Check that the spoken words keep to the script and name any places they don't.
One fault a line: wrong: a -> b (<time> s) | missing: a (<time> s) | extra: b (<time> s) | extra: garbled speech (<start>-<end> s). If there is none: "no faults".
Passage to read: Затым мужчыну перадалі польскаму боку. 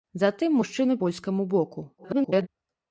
missing: перадалі (1.0 s)
extra: garbled speech (2.0-2.5 s)